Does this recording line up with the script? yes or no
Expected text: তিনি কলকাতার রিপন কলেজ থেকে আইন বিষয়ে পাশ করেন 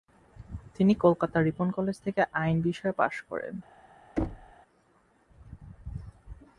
yes